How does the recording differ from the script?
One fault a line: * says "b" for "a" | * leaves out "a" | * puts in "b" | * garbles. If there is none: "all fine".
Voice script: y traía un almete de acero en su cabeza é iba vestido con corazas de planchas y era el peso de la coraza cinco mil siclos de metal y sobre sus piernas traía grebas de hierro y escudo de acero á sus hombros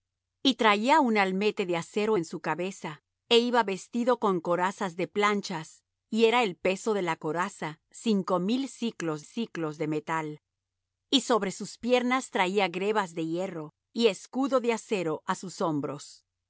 * puts in "siclos"